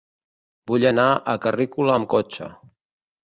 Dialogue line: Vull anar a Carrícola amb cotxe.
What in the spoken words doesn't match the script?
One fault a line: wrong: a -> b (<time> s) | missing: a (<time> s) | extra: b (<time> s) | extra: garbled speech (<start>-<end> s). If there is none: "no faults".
no faults